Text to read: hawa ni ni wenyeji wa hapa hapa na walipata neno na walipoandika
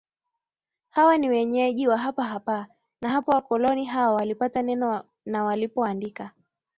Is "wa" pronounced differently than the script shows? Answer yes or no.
no